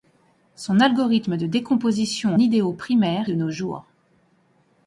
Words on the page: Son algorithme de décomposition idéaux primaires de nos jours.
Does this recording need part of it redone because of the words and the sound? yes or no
no